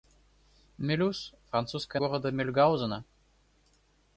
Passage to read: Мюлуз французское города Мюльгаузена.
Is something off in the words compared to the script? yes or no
no